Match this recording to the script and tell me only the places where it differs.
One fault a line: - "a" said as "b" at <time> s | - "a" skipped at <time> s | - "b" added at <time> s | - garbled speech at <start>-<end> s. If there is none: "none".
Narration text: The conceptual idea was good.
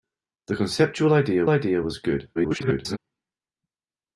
- "idea" added at 1.5 s
- garbled speech at 2.4-3.0 s